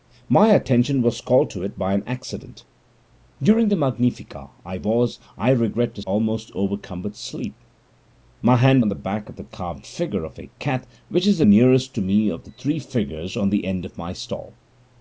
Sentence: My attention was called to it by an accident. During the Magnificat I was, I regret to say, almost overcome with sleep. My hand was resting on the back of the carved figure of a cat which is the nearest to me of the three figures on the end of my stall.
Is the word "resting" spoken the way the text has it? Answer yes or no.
no